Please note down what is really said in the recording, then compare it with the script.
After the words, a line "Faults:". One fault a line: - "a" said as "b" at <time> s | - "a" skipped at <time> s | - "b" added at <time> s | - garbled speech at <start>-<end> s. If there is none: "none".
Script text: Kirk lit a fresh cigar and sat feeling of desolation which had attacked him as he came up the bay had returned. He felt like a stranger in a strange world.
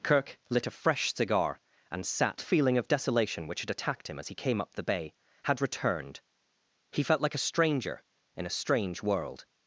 Kirk lit a fresh cigar and sat feeling of desolation which had attacked him as he came up the bay had returned. He felt like a stranger in a strange world.
Faults:
none